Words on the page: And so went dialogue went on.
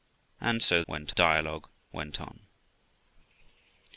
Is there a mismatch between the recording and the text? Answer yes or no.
no